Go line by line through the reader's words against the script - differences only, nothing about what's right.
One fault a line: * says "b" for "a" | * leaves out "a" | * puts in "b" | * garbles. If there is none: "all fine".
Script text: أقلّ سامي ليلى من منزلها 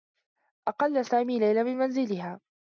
all fine